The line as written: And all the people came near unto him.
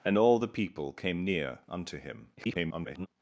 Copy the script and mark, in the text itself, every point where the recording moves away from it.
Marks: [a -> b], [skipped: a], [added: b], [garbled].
And all the people came near unto him. [garbled]